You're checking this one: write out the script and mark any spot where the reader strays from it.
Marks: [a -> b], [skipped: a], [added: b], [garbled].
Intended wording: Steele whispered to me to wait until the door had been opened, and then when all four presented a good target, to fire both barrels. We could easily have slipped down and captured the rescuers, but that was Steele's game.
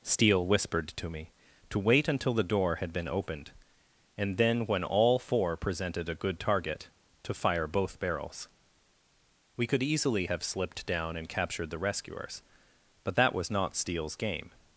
Steele whispered to me to wait until the door had been opened, and then when all four presented a good target, to fire both barrels. We could easily have slipped down and captured the rescuers, but that was [added: not] Steele's game.